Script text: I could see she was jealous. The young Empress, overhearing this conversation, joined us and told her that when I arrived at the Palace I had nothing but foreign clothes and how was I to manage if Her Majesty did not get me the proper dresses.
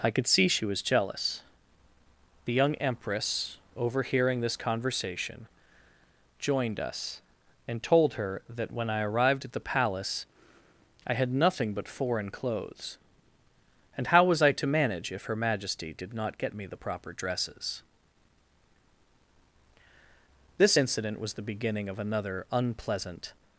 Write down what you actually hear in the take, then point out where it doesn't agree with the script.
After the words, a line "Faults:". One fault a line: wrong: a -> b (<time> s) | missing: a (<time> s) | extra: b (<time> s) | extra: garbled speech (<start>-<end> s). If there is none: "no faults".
I could see she was jealous. The young Empress, overhearing this conversation, joined us and told her that when I arrived at the Palace I had nothing but foreign clothes and how was I to manage if Her Majesty did not get me the proper dresses. This incident was the beginning of another unpleasant
Faults:
extra: This incident was the beginning of another unpleasant (20.6 s)